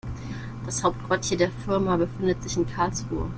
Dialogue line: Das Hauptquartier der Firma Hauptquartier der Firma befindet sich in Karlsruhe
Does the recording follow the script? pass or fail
fail